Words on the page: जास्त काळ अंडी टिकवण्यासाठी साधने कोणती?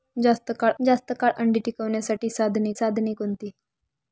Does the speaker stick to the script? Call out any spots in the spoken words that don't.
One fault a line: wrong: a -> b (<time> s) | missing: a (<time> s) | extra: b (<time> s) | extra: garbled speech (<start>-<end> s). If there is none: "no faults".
extra: जास्त काळ (0.8 s)
extra: साधने (2.7 s)